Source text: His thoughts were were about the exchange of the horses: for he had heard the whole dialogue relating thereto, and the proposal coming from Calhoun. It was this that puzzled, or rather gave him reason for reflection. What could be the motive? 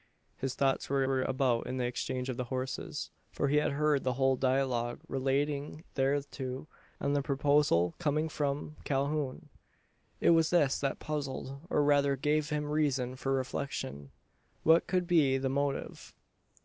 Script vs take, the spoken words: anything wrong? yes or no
no